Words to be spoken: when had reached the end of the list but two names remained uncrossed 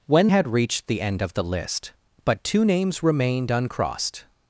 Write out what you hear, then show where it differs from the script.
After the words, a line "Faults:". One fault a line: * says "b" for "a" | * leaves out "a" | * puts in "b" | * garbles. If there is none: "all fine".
when had reached the end of the list but two names remained uncrossed
Faults:
all fine